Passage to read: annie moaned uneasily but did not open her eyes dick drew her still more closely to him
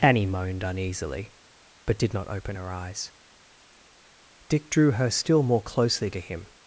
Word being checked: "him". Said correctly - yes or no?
yes